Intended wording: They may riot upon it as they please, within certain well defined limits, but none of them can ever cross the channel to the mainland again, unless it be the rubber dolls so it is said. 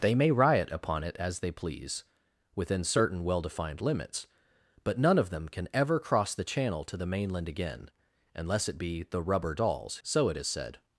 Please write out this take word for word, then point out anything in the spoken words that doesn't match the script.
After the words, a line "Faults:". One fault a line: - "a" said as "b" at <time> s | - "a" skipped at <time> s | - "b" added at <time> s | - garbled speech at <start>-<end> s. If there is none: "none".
They may riot upon it as they please, within certain well defined limits, but none of them can ever cross the channel to the mainland again, unless it be the rubber dolls so it is said.
Faults:
none